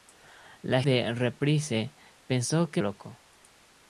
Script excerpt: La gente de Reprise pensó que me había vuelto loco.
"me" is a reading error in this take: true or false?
true